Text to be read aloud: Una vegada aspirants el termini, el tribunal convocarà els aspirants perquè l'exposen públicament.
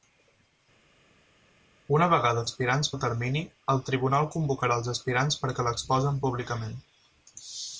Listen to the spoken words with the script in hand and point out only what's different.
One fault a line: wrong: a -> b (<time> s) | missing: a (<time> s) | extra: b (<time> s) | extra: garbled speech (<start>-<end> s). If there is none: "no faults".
no faults